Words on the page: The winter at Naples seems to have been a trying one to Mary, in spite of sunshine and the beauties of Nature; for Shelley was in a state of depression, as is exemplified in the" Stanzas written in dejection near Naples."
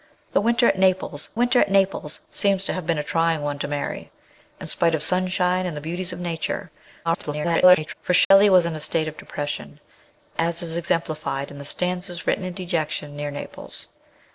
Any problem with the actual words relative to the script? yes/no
yes